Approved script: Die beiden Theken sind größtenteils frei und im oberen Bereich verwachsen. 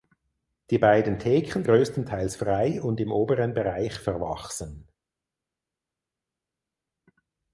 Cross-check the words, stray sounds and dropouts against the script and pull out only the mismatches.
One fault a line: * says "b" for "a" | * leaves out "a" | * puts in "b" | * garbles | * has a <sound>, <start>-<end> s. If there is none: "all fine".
* leaves out "sind"